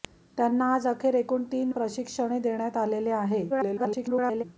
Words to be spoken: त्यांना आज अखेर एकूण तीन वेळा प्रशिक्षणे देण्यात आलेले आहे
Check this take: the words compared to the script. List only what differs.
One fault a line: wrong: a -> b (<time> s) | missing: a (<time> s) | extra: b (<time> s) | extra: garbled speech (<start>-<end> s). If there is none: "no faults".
missing: वेळा (1.7 s)
extra: garbled speech (3.5-4.4 s)